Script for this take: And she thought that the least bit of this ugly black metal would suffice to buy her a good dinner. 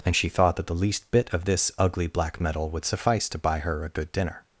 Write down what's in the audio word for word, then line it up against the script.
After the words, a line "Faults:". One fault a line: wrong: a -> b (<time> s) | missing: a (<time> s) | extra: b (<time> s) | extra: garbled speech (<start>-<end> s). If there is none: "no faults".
And she thought that the least bit of this ugly black metal would suffice to buy her a good dinner.
Faults:
no faults